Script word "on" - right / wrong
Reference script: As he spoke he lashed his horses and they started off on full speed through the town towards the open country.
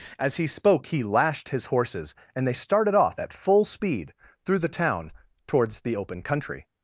wrong